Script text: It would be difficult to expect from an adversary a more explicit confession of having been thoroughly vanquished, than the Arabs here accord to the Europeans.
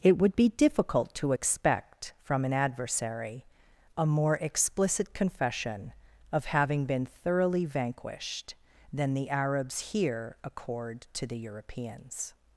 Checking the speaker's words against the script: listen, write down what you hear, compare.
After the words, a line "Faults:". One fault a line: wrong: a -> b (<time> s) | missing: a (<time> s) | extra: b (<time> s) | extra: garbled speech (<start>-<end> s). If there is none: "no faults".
It would be difficult to expect from an adversary a more explicit confession of having been thoroughly vanquished, than the Arabs here accord to the Europeans.
Faults:
no faults